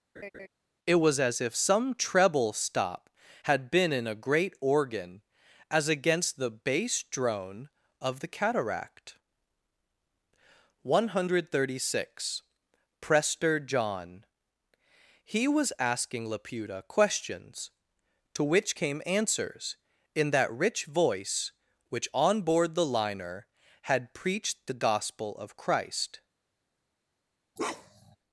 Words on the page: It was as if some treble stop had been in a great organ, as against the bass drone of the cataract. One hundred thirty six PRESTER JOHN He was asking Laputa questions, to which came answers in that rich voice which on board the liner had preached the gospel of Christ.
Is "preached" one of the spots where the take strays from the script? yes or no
no